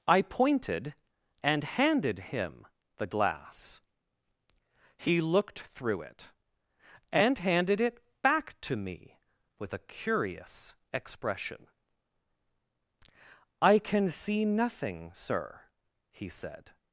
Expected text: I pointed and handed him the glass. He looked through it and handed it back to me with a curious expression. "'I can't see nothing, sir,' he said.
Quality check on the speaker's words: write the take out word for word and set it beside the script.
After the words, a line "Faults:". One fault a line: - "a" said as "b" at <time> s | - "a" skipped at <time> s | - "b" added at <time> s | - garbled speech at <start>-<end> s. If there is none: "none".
I pointed and handed him the glass. He looked through it and handed it back to me with a curious expression. "'I can see nothing, sir,' he said.
Faults:
- "can't" said as "can" at 13.8 s